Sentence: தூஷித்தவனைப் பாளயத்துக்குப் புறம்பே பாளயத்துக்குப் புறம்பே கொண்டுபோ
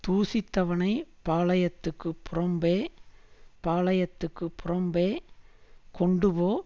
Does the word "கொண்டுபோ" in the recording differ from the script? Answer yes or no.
no